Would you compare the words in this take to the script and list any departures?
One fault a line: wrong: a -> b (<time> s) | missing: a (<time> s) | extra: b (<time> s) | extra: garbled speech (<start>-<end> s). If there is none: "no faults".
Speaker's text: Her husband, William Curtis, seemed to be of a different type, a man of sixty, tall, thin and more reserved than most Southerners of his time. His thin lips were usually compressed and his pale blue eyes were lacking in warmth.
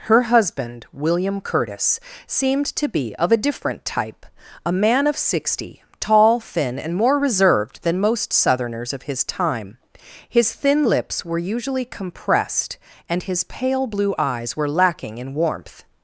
no faults